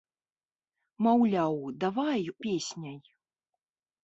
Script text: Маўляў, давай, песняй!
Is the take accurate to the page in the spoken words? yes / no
yes